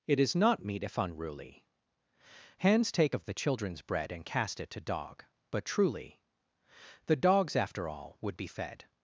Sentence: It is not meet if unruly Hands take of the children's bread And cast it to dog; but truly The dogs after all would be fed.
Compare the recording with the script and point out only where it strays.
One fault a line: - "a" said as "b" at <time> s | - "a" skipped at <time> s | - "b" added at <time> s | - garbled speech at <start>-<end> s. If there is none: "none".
none